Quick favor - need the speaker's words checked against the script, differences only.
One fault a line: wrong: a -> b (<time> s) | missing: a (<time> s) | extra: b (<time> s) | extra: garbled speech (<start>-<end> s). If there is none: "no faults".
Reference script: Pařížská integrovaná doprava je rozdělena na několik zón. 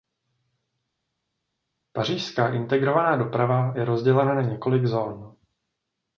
no faults